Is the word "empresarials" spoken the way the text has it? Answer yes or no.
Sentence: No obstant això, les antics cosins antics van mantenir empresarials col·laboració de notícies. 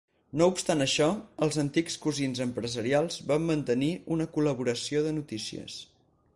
no